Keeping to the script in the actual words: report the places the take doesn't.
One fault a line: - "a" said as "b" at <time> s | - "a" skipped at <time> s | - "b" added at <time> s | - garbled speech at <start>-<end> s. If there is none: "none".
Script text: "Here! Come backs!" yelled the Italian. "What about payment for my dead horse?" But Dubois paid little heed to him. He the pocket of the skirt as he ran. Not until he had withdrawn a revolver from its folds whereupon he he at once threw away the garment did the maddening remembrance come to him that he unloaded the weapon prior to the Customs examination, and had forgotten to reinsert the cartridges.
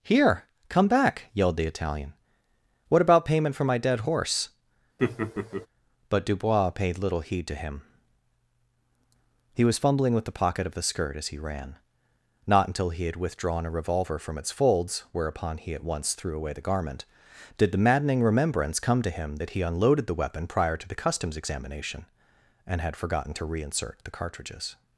- "backs" said as "back" at 0.9 s
- "was fumbling with" added at 9.6 s
- "he" skipped at 15.7 s